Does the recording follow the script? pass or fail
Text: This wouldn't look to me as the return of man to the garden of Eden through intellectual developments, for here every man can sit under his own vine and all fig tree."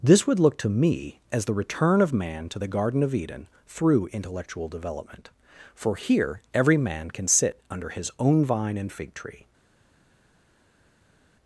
fail